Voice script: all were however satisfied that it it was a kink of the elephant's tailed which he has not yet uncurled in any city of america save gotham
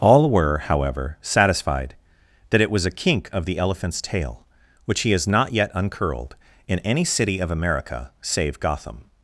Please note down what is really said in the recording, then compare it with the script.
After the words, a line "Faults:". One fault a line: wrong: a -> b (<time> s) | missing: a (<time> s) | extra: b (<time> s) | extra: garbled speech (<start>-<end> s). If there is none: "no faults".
all were however satisfied that it was a kink of the elephant's tail which he has not yet uncurled in any city of america save gotham
Faults:
missing: it (2.7 s)
wrong: tailed -> tail (4.0 s)